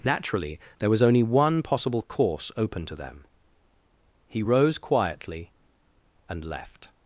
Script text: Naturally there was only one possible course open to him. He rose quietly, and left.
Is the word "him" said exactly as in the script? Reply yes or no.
no